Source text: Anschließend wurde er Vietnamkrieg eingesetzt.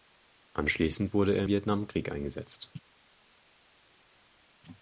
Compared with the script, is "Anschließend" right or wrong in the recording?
right